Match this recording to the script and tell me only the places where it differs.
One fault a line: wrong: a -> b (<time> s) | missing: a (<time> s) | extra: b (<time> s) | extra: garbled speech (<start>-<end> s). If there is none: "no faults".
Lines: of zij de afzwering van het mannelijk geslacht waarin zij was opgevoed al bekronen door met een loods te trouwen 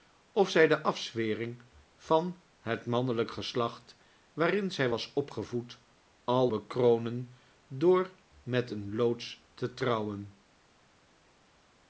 no faults